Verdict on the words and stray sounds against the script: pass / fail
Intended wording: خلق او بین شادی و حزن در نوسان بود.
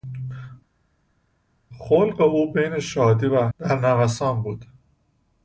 fail